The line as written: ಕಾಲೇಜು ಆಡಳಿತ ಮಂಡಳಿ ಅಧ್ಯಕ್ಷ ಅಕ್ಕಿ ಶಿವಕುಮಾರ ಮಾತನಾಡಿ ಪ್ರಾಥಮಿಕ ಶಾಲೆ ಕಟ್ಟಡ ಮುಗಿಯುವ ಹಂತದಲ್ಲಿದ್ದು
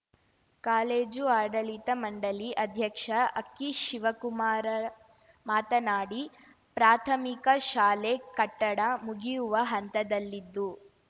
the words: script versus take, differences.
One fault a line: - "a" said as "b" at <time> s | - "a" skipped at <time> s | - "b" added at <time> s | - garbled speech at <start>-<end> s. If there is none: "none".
none